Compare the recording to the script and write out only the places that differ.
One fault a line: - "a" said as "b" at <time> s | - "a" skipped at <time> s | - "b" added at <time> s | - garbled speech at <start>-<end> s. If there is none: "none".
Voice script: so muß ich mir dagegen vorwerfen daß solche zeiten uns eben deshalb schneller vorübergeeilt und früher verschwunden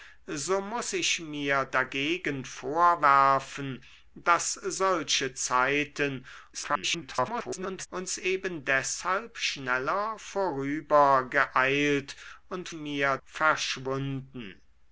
- garbled speech at 6.5-7.9 s
- "früher" said as "mir" at 12.7 s